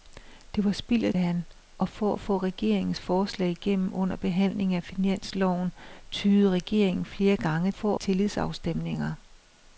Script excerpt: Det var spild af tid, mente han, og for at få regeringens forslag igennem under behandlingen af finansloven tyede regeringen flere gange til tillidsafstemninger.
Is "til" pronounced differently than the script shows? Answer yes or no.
yes